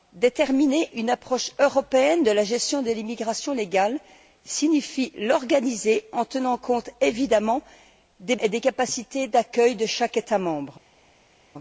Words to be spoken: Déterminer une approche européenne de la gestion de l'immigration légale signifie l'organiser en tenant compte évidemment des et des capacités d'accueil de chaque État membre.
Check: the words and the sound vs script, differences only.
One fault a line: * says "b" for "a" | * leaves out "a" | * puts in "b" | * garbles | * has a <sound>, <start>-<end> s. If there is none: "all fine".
all fine